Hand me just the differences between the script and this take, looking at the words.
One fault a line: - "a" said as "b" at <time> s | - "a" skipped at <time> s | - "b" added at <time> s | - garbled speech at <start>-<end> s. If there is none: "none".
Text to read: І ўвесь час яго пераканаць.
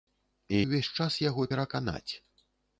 none